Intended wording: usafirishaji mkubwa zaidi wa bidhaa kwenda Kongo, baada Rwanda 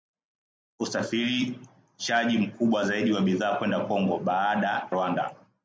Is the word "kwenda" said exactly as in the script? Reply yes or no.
yes